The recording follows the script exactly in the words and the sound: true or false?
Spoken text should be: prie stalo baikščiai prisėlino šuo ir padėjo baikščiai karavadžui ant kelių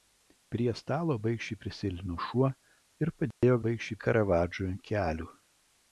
false